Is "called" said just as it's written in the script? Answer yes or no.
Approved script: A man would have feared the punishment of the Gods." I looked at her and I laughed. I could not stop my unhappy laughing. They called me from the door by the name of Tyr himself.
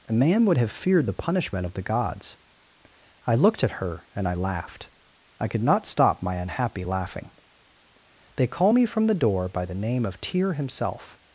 no